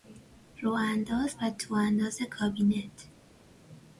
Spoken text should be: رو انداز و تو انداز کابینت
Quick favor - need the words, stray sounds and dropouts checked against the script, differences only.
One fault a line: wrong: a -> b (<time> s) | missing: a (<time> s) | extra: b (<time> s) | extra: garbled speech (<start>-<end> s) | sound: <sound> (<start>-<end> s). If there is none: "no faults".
no faults